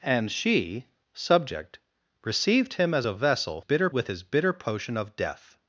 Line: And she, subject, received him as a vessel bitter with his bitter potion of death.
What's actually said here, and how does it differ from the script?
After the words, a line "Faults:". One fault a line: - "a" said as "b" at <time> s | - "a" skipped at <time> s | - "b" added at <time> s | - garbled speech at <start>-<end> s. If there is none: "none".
And she, subject, received him as a vessel bitter with his bitter potion of death.
Faults:
none